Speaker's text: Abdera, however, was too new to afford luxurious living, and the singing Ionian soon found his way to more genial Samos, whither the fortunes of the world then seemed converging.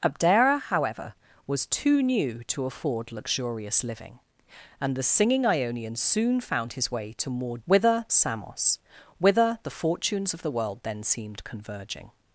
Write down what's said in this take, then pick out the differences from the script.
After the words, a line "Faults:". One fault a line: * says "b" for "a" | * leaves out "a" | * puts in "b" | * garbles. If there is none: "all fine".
Abdera, however, was too new to afford luxurious living, and the singing Ionian soon found his way to more whither Samos, whither the fortunes of the world then seemed converging.
Faults:
* says "whither" for "genial"